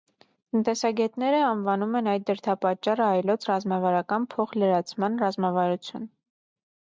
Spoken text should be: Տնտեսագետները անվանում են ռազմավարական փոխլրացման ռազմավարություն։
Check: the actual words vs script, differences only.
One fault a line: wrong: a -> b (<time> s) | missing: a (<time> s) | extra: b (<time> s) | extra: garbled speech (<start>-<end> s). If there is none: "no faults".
extra: այդ դրդապատճառը այլոց (2.1 s)